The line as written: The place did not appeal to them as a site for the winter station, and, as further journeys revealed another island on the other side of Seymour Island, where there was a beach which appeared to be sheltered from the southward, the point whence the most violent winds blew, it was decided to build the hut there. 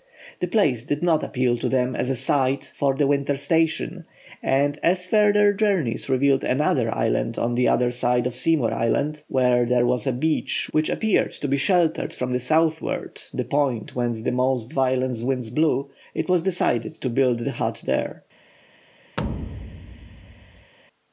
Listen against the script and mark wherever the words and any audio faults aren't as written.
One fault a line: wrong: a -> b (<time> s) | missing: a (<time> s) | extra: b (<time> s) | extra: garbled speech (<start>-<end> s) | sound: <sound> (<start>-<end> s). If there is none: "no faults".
sound: thud (19.2-20.7 s)